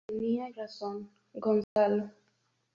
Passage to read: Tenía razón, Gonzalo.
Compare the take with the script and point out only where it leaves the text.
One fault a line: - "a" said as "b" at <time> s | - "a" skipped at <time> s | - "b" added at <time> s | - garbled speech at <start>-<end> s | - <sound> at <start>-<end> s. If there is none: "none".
- dropout at 1.6-1.8 s